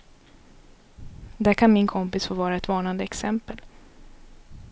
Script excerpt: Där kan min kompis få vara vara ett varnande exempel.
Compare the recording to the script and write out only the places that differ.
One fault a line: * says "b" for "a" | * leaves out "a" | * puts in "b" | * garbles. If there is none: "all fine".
* leaves out "vara"